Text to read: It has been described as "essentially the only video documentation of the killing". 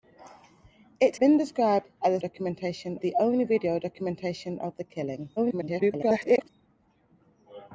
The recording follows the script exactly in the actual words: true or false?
false